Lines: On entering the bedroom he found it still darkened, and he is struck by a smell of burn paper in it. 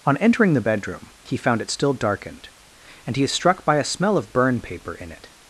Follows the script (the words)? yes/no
yes